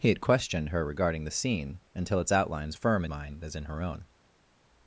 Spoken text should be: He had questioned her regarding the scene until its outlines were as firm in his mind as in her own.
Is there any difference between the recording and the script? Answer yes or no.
yes